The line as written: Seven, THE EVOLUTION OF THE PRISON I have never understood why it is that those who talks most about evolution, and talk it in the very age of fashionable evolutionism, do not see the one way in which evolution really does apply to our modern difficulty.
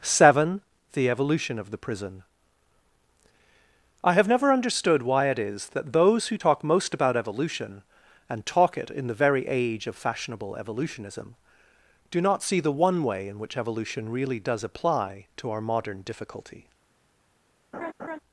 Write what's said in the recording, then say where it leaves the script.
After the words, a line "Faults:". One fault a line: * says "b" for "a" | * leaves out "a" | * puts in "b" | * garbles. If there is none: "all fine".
Seven, THE EVOLUTION OF THE PRISON I have never understood why it is that those who talk most about evolution, and talk it in the very age of fashionable evolutionism, do not see the one way in which evolution really does apply to our modern difficulty.
Faults:
* says "talk" for "talks"